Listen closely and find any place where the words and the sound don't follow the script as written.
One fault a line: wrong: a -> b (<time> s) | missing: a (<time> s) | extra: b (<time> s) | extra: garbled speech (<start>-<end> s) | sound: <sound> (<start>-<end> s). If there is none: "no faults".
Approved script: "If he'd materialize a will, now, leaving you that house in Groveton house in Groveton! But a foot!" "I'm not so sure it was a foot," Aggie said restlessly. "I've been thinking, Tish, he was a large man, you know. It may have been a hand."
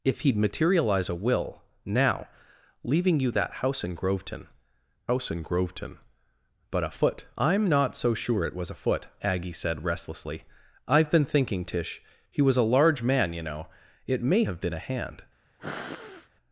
sound: sniff (15.6-16.3 s)